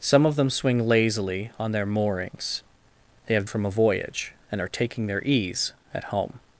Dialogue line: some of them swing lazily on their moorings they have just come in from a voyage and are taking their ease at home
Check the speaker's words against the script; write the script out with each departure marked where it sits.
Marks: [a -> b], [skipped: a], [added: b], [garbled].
some of them swing lazily on their moorings they have [skipped: just come in] from a voyage and are taking their ease at home